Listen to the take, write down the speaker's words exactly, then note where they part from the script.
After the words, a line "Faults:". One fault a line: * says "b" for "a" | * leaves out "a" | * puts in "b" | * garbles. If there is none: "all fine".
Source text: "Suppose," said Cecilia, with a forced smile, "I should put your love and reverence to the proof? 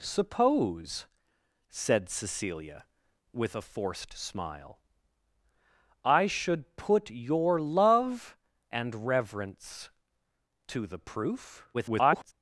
"Suppose," said Cecilia, with a forced smile, "I should put your love and reverence to the proof? [garbled]
Faults:
* garbles